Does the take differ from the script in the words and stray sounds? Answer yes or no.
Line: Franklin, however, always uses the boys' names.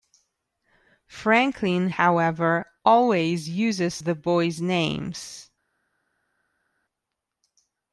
no